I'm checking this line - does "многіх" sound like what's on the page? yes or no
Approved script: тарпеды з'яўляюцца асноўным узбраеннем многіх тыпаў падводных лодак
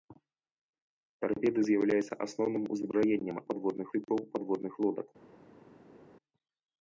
no